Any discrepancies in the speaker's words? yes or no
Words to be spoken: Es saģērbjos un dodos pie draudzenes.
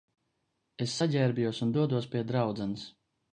no